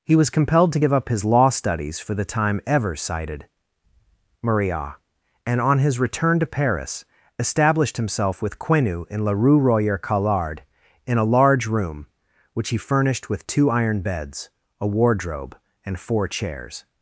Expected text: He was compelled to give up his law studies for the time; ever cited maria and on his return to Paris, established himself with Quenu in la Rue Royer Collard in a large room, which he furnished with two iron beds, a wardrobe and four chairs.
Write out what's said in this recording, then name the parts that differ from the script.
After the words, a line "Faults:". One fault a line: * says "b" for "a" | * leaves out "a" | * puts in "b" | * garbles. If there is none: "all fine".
He was compelled to give up his law studies for the time; ever cited maria and on his return to Paris, established himself with Quenu in la Rue Royer Collard in a large room, which he furnished with two iron beds, a wardrobe and four chairs.
Faults:
all fine